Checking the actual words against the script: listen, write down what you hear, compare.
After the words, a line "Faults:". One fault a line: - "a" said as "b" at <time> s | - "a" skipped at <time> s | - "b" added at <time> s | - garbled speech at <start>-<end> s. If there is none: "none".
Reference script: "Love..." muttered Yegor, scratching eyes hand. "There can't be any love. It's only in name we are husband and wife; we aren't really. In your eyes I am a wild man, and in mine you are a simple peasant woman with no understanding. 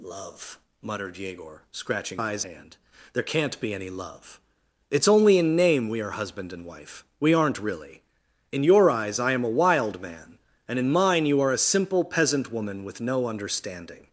"Love..." muttered Yegor, scratching eyes hand. "There can't be any love. It's only in name we are husband and wife; we aren't really. In your eyes I am a wild man, and in mine you are a simple peasant woman with no understanding.
Faults:
none